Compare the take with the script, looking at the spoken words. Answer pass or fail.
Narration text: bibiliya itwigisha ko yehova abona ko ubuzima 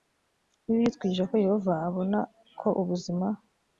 pass